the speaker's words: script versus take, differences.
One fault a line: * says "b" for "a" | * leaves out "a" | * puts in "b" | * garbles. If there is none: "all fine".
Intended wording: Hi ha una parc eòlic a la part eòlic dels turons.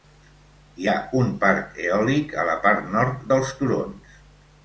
* says "un" for "una"
* says "nord" for "eòlic"